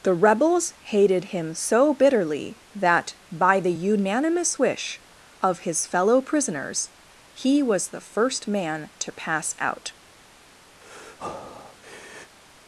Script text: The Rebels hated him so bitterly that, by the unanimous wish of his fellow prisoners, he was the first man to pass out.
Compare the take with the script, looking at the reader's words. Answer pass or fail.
pass